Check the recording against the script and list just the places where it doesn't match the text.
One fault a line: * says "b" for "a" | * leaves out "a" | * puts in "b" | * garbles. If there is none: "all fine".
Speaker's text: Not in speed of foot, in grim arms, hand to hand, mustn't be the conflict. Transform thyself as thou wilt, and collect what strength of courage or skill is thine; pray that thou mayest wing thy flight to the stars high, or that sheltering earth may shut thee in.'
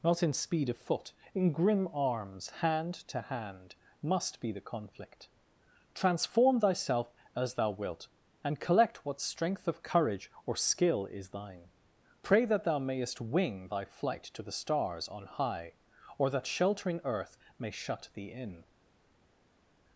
* says "must" for "mustn't"
* puts in "on"